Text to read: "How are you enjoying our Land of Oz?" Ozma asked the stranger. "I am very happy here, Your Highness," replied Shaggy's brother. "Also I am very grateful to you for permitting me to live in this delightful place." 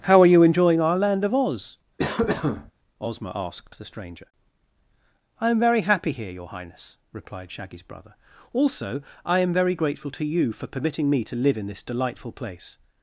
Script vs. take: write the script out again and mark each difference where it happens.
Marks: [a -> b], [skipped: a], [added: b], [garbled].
"How are you enjoying our Land of Oz?" Ozma asked the stranger. "I am very happy here, Your Highness," replied Shaggy's brother. "Also I am very grateful to you for permitting me to live in this delightful place."